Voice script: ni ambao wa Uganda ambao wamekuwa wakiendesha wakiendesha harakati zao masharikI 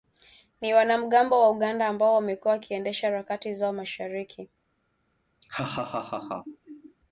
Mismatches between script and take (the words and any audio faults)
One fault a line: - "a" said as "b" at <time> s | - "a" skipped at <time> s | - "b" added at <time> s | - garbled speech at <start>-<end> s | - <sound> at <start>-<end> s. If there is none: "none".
- "ambao" said as "wanamgambo" at 0.7 s
- "wakiendesha" skipped at 3.1 s
- laugh at 5.4-7.0 s